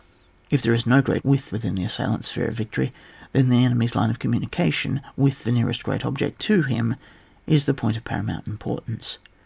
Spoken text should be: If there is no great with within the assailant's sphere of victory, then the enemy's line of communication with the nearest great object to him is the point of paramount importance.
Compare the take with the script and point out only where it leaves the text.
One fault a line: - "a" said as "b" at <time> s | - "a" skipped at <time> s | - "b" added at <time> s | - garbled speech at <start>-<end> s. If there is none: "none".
none